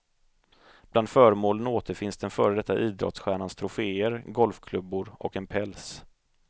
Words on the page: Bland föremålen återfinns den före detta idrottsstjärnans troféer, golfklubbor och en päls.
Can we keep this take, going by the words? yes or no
yes